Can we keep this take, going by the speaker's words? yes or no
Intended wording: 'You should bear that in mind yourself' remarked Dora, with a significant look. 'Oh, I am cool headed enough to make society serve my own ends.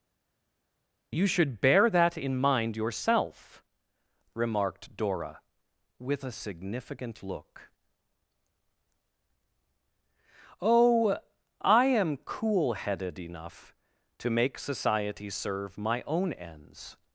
yes